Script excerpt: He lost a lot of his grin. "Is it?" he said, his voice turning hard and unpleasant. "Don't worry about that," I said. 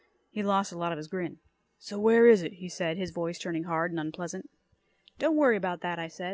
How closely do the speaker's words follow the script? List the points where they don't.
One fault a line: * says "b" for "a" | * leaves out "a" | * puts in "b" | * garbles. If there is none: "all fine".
* puts in "So where"